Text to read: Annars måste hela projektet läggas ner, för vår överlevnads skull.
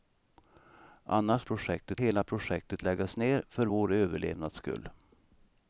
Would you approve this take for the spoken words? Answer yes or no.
no